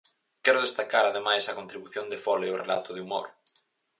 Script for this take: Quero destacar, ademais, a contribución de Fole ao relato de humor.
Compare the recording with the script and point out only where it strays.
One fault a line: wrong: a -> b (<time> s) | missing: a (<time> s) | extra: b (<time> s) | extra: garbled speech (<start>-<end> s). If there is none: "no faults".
no faults